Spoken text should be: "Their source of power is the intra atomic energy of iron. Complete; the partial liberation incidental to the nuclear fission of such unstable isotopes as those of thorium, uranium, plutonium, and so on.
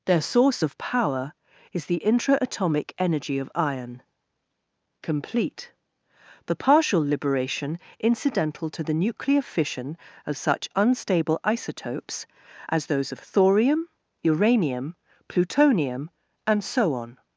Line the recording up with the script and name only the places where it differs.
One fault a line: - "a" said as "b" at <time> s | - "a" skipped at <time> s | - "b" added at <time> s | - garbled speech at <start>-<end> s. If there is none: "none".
none